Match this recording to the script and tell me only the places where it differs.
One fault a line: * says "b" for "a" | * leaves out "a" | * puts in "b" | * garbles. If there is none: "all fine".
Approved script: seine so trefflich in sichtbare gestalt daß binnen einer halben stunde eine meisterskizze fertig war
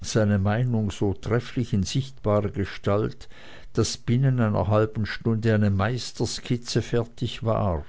* puts in "meinung"